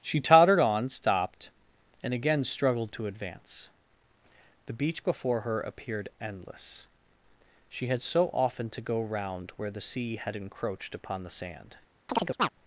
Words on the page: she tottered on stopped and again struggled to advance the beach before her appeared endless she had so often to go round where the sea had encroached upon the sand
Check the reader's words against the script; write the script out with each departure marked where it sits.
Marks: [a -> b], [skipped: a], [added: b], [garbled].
she tottered on stopped and again struggled to advance the beach before her appeared endless she had so often to go round where the sea had encroached upon the sand